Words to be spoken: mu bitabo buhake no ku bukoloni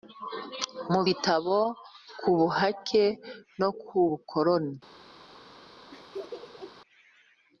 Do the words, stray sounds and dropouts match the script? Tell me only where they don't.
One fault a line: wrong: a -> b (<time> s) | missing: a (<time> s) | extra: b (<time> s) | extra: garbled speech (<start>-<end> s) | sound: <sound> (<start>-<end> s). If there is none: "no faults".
extra: ku (2.2 s)
sound: laugh (5.9-6.8 s)